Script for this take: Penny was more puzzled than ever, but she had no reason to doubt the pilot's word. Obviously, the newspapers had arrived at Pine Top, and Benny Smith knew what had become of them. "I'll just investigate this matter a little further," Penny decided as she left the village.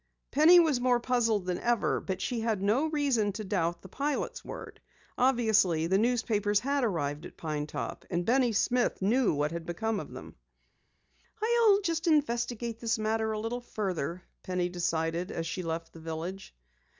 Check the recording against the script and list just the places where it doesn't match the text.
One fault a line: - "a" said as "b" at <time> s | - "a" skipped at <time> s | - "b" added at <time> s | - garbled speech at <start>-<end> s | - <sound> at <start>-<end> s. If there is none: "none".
none